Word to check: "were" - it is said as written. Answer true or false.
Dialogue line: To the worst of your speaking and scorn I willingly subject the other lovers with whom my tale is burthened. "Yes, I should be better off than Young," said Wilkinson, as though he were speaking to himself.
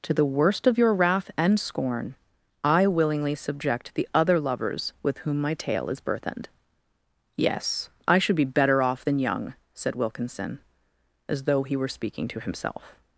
true